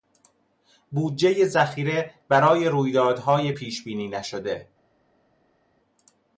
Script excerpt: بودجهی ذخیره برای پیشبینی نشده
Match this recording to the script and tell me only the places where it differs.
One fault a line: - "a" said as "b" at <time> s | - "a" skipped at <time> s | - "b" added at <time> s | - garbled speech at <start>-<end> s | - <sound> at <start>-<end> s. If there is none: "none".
- "رویدادهای" added at 2.7 s